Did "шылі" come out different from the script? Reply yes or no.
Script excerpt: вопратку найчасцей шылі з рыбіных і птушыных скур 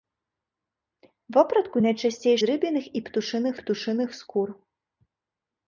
yes